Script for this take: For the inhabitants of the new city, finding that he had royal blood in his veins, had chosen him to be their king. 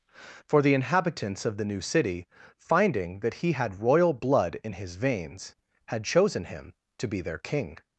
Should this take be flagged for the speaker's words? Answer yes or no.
no